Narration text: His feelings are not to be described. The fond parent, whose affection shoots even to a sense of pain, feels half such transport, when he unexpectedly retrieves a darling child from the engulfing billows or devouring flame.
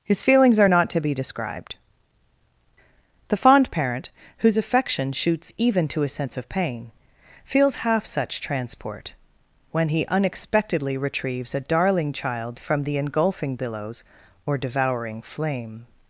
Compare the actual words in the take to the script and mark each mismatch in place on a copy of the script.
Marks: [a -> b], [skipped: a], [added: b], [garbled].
His feelings are not to be described. The fond parent, whose affection shoots even to a sense of pain, feels half such transport, when he unexpectedly retrieves a darling child from the engulfing billows or devouring flame.